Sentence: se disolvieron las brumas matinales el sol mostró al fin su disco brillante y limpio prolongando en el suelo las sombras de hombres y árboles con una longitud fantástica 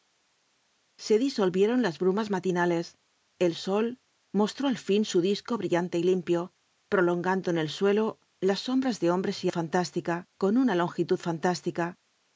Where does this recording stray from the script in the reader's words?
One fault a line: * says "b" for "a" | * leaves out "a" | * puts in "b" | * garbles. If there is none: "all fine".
* says "fantástica" for "árboles"